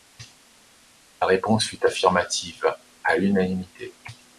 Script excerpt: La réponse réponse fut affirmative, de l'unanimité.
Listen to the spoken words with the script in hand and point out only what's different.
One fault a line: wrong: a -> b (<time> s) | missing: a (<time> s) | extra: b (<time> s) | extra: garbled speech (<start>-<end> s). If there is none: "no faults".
missing: réponse (1.6 s)
wrong: de -> à (3.0 s)